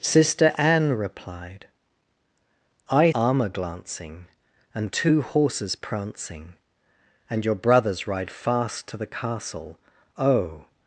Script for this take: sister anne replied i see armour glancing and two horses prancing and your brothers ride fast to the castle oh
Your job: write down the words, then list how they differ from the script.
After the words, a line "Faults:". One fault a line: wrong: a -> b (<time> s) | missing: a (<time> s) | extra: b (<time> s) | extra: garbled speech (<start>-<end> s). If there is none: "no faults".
sister anne replied i armour glancing and two horses prancing and your brothers ride fast to the castle oh
Faults:
missing: see (3.1 s)